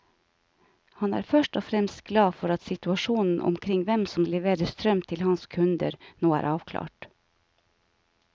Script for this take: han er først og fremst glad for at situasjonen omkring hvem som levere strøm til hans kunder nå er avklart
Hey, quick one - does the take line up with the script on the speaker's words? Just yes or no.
yes